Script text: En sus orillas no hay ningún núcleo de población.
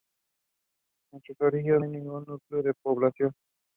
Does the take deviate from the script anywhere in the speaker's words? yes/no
yes